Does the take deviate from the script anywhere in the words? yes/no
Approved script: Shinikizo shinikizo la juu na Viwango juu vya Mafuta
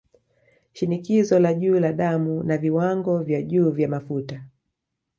yes